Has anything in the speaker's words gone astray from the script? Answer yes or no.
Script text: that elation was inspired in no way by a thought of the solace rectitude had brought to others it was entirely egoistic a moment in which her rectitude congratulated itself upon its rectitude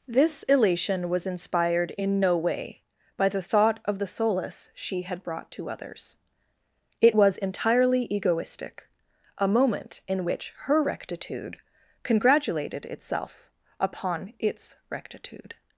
yes